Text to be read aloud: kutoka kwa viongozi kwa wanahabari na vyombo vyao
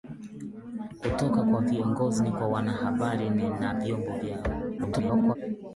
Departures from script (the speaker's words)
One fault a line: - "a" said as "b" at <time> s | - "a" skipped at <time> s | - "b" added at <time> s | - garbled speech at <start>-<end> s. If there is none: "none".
- garbled speech at 4.8-5.4 s